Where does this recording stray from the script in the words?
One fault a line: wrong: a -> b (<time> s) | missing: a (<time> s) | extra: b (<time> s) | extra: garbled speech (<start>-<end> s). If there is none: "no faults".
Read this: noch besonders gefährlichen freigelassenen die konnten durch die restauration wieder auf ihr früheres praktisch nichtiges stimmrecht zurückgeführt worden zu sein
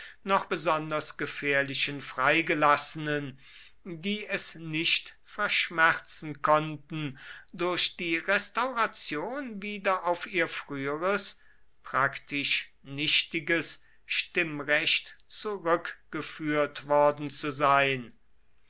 extra: es nicht verschmerzen (4.3 s)